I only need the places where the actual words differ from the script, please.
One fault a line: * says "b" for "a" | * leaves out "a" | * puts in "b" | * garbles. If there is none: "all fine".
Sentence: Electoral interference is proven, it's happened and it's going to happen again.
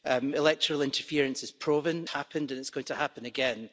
* leaves out "it's"